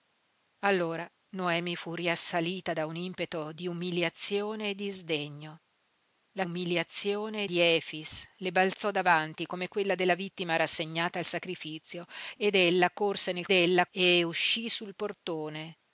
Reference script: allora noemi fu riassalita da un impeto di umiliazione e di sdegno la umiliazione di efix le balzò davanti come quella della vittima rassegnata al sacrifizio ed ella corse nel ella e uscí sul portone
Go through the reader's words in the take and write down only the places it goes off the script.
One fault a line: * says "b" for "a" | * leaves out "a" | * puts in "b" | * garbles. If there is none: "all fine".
all fine